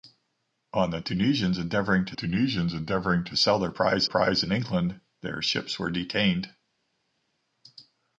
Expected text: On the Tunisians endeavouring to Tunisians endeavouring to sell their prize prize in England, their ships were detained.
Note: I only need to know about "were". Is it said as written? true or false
true